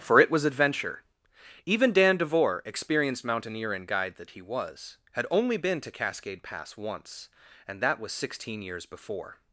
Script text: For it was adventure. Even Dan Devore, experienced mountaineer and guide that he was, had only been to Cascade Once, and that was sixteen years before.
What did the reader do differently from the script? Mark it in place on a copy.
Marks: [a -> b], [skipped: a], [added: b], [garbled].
For it was adventure. Even Dan Devore, experienced mountaineer and guide that he was, had only been to Cascade [added: Pass] Once, and that was sixteen years before.